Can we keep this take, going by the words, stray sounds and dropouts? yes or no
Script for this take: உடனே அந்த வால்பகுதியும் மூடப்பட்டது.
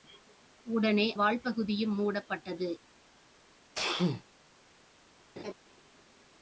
no